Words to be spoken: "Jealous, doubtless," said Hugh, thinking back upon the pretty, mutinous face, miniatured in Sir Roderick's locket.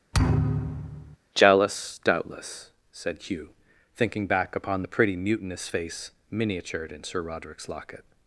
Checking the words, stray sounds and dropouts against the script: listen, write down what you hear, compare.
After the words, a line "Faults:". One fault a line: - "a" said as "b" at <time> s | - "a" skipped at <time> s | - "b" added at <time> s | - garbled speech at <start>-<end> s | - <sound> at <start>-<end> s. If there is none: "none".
"Jealous, doubtless," said Hugh, thinking back upon the pretty, mutinous face, miniatured in Sir Roderick's locket.
Faults:
- thud at 0.1-1.2 s